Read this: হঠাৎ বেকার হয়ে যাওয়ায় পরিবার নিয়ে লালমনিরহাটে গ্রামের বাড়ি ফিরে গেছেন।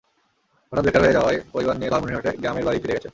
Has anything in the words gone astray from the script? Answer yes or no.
no